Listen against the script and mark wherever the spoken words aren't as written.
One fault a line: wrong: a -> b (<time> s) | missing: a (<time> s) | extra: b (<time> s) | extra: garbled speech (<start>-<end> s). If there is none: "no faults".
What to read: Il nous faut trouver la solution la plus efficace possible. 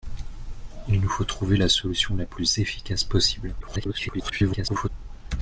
extra: garbled speech (3.6-4.9 s)